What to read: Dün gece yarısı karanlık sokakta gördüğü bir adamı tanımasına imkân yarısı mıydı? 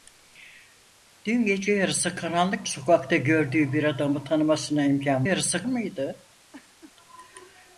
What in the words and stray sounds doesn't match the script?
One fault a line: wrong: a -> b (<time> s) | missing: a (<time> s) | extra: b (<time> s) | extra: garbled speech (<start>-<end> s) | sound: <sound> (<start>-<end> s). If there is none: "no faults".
sound: laugh (6.5-6.9 s)